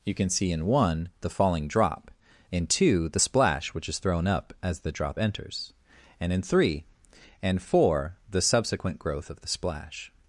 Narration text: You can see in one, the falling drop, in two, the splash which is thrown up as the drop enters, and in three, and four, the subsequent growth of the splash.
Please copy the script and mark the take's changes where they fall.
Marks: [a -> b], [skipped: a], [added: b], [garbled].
You can see in one, the falling drop, in two, the splash which is thrown up as the drop enters, and in three, and four, the subsequent growth of the splash.